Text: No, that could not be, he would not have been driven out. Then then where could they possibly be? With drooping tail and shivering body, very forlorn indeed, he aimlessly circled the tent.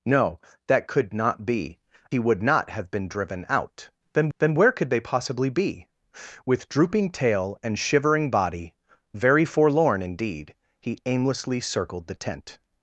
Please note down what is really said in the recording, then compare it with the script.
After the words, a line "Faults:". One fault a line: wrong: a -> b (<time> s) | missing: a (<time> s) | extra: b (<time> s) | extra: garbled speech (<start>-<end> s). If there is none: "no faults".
No, that could not be, he would not have been driven out. Then then where could they possibly be? With drooping tail and shivering body, very forlorn indeed, he aimlessly circled the tent.
Faults:
no faults